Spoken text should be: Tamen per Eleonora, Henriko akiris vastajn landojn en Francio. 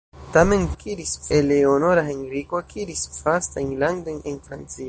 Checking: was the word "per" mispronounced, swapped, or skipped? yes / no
yes